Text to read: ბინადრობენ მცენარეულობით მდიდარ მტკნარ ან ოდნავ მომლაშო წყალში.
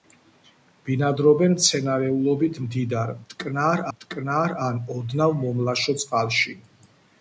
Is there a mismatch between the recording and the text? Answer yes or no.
yes